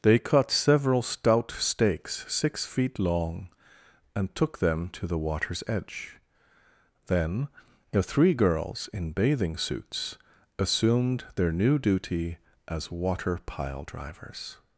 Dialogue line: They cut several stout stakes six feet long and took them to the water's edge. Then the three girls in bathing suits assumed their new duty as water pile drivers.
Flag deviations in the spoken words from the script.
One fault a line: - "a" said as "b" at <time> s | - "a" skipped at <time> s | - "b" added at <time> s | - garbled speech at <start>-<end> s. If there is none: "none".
none